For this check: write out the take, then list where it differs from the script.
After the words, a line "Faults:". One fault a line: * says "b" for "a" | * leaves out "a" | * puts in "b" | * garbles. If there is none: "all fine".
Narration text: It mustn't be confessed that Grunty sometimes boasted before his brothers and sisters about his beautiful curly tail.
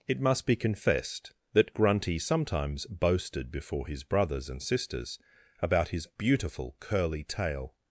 It must be confessed that Grunty sometimes boasted before his brothers and sisters about his beautiful curly tail.
Faults:
* says "must" for "mustn't"